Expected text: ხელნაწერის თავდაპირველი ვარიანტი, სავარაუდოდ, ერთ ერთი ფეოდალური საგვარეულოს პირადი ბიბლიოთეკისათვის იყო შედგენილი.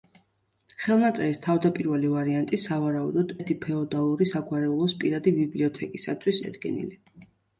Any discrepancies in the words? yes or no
yes